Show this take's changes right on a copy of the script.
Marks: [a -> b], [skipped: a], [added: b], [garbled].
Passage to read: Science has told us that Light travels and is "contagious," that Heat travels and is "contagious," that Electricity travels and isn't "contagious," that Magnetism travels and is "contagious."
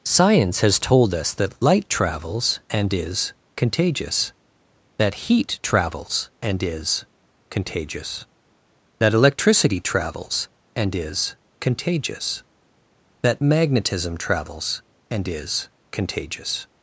Science has told us that Light travels and is "contagious," that Heat travels and is "contagious," that Electricity travels and [isn't -> is] "contagious," that Magnetism travels and is "contagious."